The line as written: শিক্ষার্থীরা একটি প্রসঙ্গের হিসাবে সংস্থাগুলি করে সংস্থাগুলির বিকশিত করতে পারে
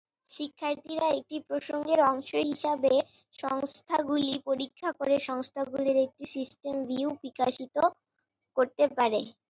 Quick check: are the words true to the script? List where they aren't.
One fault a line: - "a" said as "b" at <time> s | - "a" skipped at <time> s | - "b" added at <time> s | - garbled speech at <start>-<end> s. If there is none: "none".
- "অংশ" added at 2.1 s
- "পরীক্ষা" added at 4.5 s
- "একটি সিস্টেম ভিউ" added at 6.1 s